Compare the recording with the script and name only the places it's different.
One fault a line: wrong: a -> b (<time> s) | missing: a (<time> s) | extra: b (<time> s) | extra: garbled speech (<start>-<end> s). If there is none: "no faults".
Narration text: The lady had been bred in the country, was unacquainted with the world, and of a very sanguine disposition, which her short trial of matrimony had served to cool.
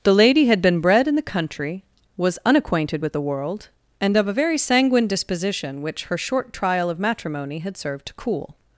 no faults